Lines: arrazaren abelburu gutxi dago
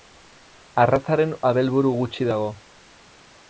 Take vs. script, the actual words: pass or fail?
pass